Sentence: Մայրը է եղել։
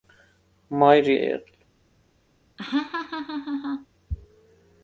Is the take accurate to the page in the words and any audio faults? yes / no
no